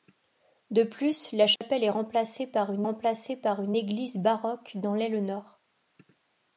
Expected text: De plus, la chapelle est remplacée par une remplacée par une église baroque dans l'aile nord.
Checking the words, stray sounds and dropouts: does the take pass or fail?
fail